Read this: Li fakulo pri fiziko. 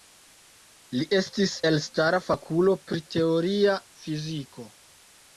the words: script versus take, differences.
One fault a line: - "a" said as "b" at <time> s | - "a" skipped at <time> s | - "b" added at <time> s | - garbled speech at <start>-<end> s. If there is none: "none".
- "estis elstara" added at 1.2 s
- "teoria" added at 3.1 s